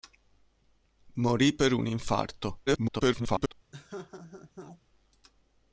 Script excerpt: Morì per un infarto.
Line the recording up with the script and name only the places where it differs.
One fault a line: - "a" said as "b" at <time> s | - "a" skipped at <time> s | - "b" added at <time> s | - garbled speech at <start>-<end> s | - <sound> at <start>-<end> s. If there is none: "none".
- garbled speech at 2.7-3.5 s
- laugh at 3.7-4.8 s